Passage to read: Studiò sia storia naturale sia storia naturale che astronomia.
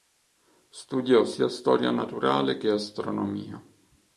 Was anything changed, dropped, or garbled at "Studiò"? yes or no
no